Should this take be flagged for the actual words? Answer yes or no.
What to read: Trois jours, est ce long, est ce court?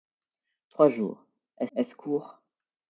yes